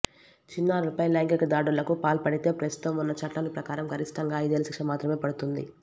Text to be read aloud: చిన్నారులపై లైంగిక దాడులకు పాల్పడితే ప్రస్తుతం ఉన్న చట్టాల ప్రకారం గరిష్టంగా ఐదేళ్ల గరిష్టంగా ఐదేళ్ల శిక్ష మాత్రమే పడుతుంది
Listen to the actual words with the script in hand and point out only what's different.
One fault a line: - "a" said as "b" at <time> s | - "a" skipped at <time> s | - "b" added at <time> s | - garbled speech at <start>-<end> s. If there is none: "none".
- "గరిష్టంగా ఐదేళ్ల" skipped at 4.7 s